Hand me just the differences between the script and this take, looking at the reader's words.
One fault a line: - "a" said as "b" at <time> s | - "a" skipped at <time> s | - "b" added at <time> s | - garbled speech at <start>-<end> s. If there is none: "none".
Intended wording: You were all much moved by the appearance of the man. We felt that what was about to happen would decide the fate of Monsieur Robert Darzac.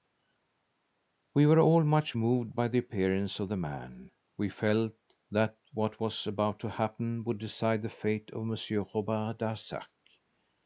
- "You" said as "We" at 1.3 s